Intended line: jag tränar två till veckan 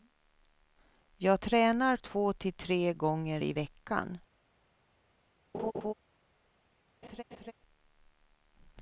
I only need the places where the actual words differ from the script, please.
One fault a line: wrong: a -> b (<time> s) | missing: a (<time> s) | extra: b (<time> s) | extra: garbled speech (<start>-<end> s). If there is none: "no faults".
extra: tre gånger i (2.5 s)